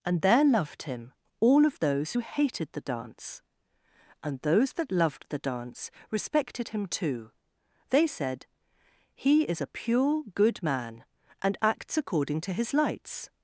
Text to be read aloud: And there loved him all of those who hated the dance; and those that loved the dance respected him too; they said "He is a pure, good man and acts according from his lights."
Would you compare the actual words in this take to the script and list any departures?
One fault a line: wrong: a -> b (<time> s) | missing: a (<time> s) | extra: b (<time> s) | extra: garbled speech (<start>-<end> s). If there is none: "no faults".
wrong: from -> to (12.4 s)